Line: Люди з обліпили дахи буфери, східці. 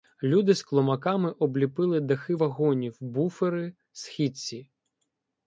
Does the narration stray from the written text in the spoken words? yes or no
yes